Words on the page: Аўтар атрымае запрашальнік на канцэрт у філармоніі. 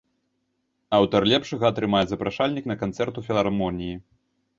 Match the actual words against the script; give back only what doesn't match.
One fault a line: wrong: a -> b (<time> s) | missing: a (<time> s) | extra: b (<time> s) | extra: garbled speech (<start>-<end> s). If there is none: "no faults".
extra: лепшага (1.3 s)